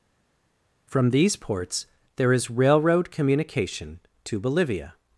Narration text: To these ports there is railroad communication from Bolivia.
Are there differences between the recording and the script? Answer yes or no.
yes